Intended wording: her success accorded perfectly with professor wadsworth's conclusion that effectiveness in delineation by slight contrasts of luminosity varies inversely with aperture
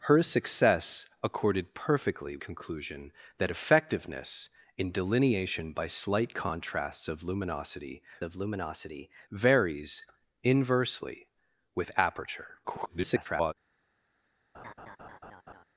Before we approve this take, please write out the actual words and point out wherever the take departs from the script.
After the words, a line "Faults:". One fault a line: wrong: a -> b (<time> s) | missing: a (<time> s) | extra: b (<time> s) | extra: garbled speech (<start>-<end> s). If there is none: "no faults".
her success accorded perfectly conclusion that effectiveness in delineation by slight contrasts of luminosity of luminosity varies inversely with aperture [garbled]
Faults:
missing: with professor wadsworth's (2.4 s)
extra: of luminosity (8.2 s)
extra: garbled speech (12.6-13.5 s)